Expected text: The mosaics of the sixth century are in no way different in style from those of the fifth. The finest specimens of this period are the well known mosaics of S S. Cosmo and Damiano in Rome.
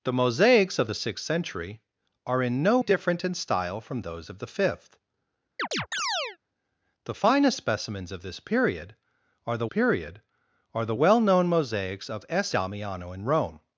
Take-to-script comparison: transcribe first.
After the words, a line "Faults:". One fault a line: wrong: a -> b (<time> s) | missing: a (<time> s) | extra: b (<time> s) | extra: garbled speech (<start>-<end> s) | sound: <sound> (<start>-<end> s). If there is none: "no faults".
The mosaics of the sixth century are in no different in style from those of the fifth. The finest specimens of this period are the period are the well known mosaics of S Damiano in Rome.
Faults:
missing: way (2.8 s)
sound: chirp (5.6-6.4 s)
extra: period are the (9.6 s)
missing: S Cosmo and (12.5 s)